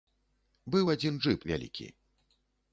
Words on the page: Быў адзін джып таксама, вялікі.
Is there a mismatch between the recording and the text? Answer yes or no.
yes